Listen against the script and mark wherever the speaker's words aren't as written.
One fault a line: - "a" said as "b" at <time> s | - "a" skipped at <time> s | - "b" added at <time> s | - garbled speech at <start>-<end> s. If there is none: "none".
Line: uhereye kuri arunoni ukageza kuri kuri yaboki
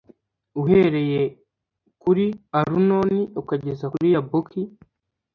- "kuri" skipped at 4.1 s